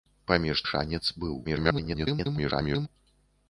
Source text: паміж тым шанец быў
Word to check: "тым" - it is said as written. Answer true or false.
false